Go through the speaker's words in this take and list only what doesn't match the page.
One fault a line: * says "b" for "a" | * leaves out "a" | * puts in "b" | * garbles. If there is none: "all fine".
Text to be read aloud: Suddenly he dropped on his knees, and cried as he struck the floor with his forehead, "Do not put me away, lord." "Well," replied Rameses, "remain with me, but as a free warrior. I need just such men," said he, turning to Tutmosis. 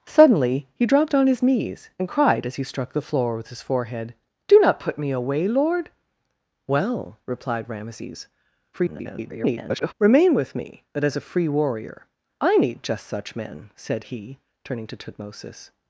* garbles